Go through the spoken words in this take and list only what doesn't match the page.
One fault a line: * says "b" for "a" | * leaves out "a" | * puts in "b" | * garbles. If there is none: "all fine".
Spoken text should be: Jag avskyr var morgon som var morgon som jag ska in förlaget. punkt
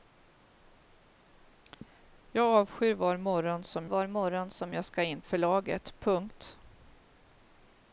all fine